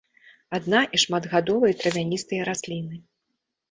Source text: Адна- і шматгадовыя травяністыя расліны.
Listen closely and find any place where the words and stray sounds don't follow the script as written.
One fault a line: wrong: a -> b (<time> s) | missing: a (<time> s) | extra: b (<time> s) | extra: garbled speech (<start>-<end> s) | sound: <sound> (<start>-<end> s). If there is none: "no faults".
no faults